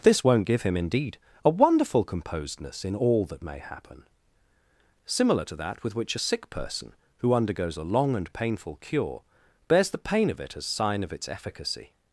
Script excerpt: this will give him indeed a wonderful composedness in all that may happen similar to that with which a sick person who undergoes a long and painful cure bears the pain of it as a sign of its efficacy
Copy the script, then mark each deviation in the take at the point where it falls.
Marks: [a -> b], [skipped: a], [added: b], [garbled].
this [will -> won't] give him indeed a wonderful composedness in all that may happen similar to that with which a sick person who undergoes a long and painful cure bears the pain of it as [skipped: a] sign of its efficacy